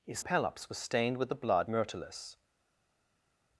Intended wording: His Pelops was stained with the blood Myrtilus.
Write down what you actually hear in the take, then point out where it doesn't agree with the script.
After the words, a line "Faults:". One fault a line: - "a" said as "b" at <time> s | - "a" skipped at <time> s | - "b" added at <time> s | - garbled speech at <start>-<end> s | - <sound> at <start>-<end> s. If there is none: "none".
His Pelops was stained with the blood Myrtilus.
Faults:
none